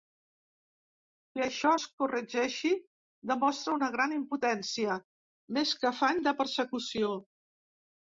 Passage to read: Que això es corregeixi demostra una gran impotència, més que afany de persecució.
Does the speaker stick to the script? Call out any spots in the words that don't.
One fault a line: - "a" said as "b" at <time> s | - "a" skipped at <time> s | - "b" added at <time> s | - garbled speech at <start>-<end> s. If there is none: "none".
none